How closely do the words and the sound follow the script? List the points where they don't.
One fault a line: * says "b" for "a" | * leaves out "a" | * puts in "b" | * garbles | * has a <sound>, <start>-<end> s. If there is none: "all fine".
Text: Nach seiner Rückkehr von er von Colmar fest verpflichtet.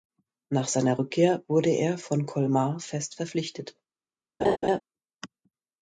* says "wurde" for "von"
* has a laugh, 4.4-4.8 s